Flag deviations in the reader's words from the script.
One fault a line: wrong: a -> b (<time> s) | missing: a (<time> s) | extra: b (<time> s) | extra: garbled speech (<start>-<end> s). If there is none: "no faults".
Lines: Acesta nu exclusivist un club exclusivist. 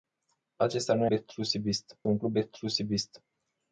no faults